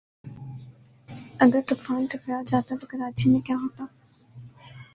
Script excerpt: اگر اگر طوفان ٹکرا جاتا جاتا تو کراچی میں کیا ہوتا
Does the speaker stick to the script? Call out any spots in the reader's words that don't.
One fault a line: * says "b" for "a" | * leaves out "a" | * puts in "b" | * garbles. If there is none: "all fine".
* leaves out "اگر"
* leaves out "جاتا"